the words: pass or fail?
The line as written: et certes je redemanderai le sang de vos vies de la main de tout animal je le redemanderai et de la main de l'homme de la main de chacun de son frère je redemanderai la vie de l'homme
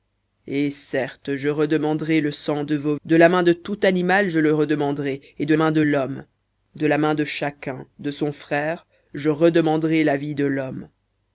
fail